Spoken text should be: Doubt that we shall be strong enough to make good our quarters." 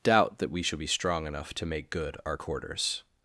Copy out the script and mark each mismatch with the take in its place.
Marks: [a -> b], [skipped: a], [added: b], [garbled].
Doubt that we shall be strong enough to make good our quarters."